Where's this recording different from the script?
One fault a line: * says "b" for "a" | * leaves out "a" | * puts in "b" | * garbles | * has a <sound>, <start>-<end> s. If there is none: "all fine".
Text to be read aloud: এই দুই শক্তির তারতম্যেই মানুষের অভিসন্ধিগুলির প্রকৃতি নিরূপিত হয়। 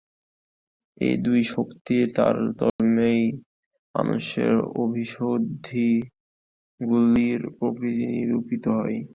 * has a dropout, 2.7-2.8 s